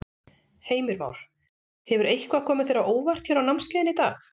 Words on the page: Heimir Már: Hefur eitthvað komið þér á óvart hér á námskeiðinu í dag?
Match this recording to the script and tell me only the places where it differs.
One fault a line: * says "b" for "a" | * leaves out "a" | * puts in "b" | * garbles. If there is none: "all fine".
all fine